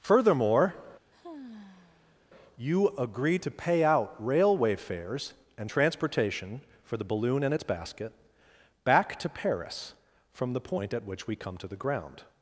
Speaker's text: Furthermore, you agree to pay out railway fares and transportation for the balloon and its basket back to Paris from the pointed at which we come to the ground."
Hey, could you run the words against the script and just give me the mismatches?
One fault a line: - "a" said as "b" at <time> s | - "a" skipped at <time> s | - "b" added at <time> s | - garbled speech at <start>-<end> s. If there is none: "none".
- "pointed" said as "point" at 10.6 s